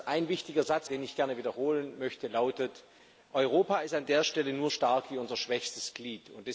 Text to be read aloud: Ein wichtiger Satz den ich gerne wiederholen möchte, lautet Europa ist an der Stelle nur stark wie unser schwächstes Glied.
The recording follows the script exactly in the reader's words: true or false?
true